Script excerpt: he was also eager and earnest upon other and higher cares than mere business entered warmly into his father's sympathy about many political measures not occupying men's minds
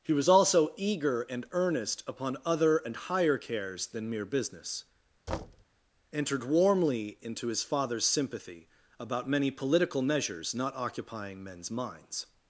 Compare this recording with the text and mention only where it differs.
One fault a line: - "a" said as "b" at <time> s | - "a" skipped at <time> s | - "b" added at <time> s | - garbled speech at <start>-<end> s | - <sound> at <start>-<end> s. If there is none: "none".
- thud at 5.3-5.7 s